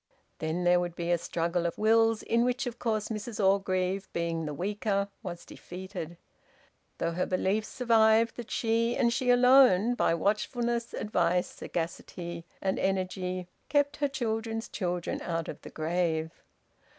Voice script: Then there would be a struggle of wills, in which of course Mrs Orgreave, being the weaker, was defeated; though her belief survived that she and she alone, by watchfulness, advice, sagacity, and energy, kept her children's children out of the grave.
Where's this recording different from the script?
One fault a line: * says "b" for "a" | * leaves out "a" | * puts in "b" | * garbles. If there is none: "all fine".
all fine